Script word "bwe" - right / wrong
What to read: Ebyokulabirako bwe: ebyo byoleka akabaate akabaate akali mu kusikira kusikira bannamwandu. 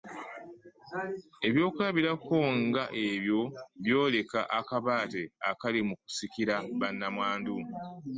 wrong